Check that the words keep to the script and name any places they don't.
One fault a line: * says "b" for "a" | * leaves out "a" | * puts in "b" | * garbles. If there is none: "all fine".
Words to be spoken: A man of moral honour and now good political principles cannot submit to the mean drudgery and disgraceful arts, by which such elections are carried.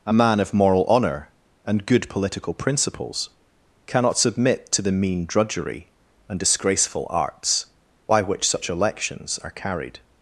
* leaves out "now"